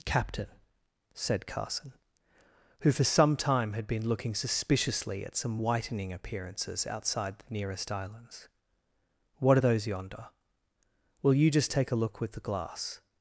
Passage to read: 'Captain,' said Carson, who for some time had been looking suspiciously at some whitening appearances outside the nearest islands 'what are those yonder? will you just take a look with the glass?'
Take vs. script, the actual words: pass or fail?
pass